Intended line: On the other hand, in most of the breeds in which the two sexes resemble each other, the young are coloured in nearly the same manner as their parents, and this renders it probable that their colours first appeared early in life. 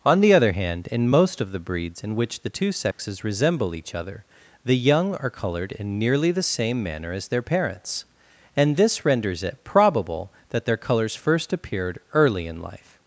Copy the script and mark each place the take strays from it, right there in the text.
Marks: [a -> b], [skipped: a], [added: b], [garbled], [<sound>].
On the other hand, in most of the breeds in which the two sexes [dropout] resemble each other, the young are coloured in nearly the same manner as their parents, and this renders it probable that their colours first appeared early in life.